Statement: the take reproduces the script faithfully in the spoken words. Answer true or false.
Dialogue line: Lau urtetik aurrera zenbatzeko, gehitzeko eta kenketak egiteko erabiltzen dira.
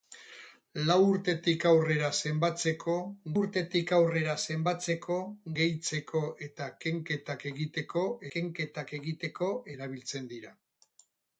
false